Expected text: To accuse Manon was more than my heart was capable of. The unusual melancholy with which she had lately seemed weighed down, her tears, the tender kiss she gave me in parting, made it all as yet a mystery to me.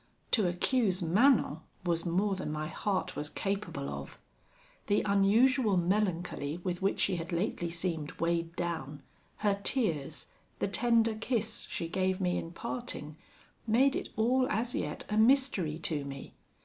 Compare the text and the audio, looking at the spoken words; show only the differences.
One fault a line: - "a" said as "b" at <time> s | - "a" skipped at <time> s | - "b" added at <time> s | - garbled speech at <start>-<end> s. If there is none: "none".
none